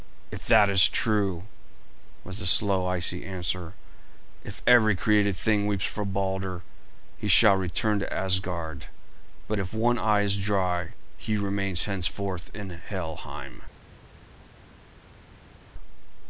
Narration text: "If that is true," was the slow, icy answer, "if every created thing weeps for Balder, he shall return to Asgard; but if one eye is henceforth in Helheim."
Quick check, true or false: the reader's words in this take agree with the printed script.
false